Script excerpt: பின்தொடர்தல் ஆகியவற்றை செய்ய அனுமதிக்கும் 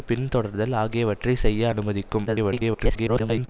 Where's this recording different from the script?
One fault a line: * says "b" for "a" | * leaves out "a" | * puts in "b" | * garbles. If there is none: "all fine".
* garbles